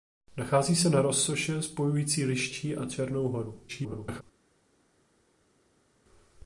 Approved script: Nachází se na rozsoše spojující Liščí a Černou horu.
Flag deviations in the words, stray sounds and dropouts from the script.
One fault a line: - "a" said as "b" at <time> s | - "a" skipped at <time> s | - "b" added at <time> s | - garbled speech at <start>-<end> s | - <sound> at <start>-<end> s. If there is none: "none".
- garbled speech at 3.7-4.2 s